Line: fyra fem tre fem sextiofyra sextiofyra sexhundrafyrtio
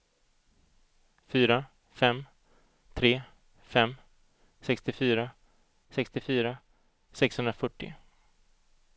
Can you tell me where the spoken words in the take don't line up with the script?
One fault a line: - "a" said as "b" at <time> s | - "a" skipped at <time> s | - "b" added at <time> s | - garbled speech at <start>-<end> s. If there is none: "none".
none